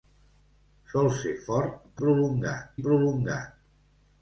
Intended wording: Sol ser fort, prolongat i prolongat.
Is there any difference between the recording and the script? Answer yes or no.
no